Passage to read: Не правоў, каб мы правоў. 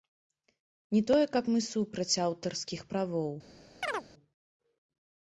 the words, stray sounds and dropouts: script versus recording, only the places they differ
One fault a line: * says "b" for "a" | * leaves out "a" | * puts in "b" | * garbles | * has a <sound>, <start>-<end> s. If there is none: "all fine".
* says "тое" for "правоў"
* puts in "супраць аўтарскіх"
* has a chirp, 3.8-4.1 s